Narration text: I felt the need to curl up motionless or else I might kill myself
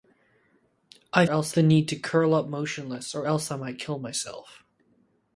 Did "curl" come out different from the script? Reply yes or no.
no